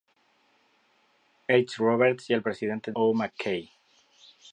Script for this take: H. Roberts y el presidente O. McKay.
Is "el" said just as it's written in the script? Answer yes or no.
yes